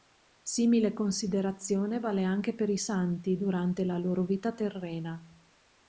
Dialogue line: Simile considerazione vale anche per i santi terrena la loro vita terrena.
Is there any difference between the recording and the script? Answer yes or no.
yes